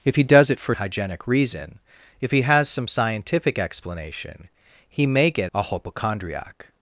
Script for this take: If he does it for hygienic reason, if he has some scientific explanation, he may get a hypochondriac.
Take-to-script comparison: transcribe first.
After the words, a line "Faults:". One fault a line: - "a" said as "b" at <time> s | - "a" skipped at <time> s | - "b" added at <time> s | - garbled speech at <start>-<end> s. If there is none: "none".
If he does it for hygienic reason, if he has some scientific explanation, he may get a hypochondriac.
Faults:
none